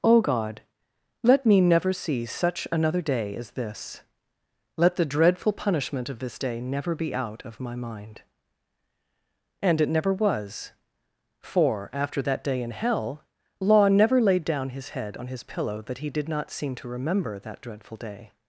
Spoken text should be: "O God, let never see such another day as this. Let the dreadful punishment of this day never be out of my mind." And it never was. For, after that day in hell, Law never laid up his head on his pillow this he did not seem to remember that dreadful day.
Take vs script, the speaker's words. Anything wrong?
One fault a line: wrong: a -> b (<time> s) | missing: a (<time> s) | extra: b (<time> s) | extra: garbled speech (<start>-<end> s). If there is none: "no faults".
extra: me (1.4 s)
wrong: up -> down (14.4 s)
wrong: this -> that (15.8 s)